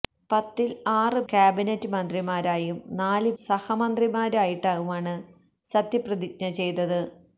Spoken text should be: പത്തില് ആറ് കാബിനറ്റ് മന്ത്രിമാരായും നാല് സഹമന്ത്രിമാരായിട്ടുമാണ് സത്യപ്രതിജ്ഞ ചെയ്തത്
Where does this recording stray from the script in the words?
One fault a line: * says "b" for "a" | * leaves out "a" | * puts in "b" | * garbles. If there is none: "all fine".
all fine